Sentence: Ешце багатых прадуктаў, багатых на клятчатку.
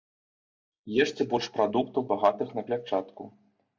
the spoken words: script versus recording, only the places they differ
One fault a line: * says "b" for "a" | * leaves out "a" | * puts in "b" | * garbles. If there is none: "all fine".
* says "больш" for "багатых"